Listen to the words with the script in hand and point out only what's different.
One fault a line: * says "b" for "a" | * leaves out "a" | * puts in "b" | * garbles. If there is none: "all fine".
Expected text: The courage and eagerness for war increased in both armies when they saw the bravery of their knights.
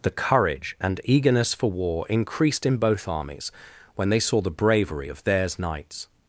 * says "theirs" for "their"